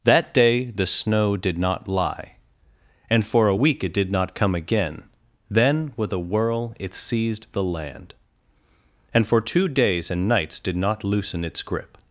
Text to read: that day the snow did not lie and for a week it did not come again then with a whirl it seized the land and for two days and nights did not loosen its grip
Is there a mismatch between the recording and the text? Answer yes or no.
no